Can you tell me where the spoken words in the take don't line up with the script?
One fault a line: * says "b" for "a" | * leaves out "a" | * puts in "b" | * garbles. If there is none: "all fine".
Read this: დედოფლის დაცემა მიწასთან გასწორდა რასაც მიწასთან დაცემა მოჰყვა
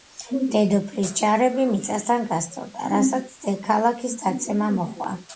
* says "ჯარები" for "დაცემა"
* says "ქალაქის" for "მიწასთან"